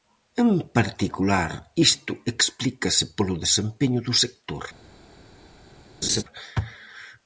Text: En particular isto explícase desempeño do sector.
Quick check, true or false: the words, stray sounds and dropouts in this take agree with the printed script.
false